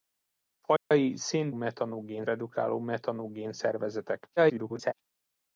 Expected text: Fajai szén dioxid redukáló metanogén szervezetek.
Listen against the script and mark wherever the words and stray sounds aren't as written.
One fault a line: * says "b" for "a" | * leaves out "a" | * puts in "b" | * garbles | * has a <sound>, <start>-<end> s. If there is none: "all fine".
* has a dropout, 0.8-0.9 s
* says "metanogén" for "dioxid"
* garbles